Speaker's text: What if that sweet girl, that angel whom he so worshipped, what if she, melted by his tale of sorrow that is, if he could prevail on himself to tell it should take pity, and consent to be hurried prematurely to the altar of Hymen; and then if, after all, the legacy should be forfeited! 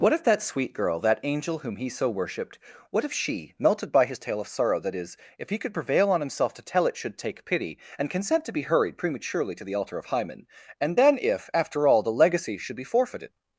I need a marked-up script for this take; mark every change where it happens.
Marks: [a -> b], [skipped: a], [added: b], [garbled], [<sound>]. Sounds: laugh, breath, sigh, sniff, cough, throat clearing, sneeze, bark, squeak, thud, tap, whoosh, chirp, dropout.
What if that sweet girl, that angel whom he so worshipped, what if she, melted by his tale of sorrow that is, if he could prevail on himself to tell it should take pity, and consent to be hurried prematurely to the altar of Hymen; and then if, after all, the legacy should be forfeited!